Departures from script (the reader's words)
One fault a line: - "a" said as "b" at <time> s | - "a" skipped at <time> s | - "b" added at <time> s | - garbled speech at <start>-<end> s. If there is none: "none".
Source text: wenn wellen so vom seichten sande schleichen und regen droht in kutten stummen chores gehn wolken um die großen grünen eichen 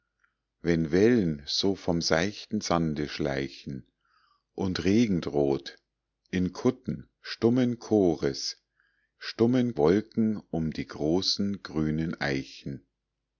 - "gehn" said as "stummen" at 9.2 s